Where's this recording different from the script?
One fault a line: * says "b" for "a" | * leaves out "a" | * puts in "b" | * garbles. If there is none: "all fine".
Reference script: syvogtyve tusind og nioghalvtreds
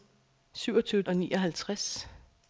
* leaves out "tusind"